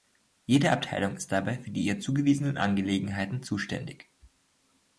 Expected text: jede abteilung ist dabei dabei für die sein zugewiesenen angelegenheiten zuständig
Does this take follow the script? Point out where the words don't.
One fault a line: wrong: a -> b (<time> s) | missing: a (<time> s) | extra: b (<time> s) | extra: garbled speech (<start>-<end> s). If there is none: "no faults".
missing: dabei (1.6 s)
wrong: sein -> ihr (1.8 s)